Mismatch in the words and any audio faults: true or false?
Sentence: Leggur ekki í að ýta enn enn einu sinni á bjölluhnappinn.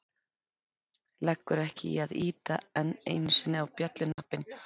true